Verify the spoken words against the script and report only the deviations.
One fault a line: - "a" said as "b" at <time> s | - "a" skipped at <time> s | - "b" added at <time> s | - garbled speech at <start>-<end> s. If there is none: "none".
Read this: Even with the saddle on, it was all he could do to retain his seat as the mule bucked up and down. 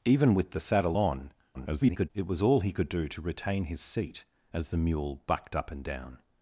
- garbled speech at 1.5-2.1 s